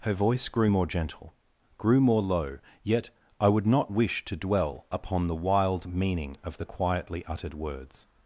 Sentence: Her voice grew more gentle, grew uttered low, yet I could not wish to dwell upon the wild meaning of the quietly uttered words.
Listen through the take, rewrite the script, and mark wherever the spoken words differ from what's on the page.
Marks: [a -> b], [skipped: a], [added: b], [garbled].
Her voice grew more gentle, grew [uttered -> more] low, yet I [could -> would] not wish to dwell upon the wild meaning of the quietly uttered words.